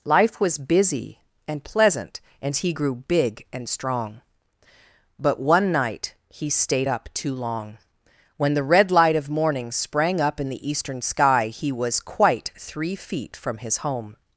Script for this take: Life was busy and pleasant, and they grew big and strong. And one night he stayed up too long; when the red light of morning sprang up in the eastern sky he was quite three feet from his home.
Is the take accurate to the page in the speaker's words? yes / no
no